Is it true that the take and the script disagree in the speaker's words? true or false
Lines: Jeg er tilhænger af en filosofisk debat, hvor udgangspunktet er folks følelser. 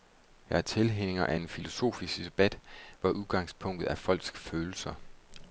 false